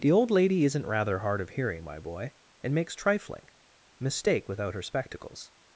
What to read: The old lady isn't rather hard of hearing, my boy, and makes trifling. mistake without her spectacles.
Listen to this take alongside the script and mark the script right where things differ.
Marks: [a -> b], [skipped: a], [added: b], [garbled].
The old lady isn't rather hard of hearing, my boy, and makes trifling. mistake without her spectacles.